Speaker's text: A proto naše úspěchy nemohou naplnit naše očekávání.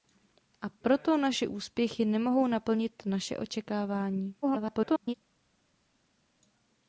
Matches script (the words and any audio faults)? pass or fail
fail